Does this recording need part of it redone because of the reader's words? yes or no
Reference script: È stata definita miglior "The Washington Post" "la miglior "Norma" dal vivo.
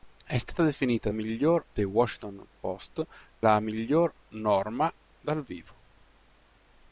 no